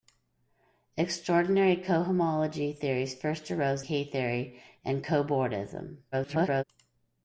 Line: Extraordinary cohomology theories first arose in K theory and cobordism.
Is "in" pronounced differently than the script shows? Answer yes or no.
yes